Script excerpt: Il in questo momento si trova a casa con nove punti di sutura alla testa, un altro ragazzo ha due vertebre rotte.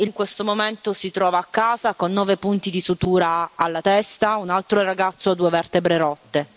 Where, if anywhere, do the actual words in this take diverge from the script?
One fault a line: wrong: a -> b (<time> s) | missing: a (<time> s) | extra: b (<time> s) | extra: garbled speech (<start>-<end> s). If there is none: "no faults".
no faults